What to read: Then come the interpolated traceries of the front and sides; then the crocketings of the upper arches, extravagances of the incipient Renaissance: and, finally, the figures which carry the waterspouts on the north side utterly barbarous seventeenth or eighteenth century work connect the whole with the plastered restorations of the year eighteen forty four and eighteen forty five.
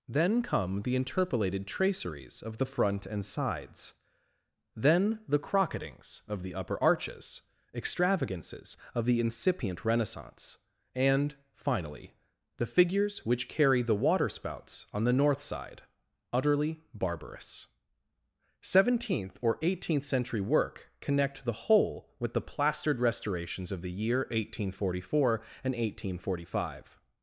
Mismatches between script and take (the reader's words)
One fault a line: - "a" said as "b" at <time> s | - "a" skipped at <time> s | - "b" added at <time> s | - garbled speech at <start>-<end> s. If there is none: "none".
none